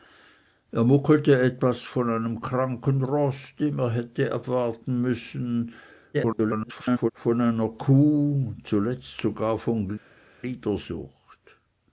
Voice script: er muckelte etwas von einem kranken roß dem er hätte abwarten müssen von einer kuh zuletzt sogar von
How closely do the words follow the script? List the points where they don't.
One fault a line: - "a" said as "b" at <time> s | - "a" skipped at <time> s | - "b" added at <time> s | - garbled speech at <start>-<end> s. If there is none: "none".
- garbled speech at 6.1-7.1 s